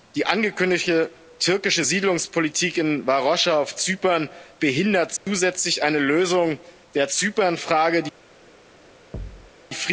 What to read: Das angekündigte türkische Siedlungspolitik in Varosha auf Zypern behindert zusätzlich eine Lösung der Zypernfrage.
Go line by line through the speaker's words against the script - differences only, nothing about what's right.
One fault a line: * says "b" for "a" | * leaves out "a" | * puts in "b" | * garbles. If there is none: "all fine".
* says "Die" for "Das"